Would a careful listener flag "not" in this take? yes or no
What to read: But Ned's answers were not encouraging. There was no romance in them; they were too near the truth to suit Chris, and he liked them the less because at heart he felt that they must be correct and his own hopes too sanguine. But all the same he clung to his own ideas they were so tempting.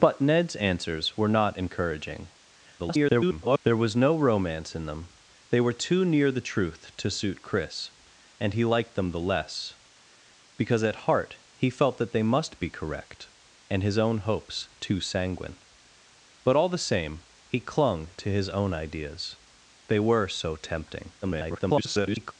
no